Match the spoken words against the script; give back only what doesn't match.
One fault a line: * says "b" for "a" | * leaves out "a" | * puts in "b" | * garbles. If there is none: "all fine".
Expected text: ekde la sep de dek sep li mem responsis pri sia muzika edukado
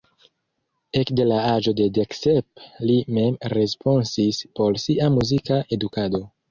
* says "aĝo" for "sep"
* says "por" for "pri"